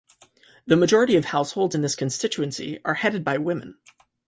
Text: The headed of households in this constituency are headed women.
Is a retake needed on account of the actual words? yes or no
yes